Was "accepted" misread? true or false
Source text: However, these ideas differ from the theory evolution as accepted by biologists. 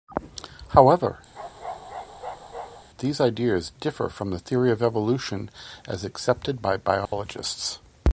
false